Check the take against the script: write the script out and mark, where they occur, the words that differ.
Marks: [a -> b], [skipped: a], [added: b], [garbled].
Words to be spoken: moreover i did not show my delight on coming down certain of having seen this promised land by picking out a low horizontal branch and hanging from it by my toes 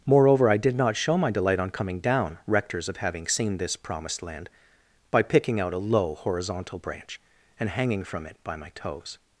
moreover i did not show my delight on coming down [certain -> rectors] of having seen this promised land by picking out a low horizontal branch and hanging from it by my toes